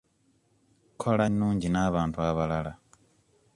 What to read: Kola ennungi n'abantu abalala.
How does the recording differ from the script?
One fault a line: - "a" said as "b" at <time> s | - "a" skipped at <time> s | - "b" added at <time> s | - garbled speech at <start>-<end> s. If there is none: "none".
none